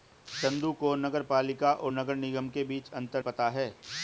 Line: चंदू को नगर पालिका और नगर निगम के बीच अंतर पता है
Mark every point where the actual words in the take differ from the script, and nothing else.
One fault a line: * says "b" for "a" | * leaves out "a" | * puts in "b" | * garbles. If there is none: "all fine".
all fine